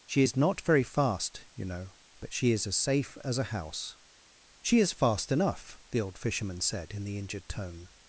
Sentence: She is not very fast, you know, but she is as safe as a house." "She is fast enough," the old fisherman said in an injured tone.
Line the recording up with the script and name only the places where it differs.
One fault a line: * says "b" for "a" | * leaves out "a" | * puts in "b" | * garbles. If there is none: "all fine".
* says "the" for "an"